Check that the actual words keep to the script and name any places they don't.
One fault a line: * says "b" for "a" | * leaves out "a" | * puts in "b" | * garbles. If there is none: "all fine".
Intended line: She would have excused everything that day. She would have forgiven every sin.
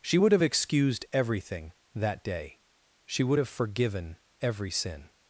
all fine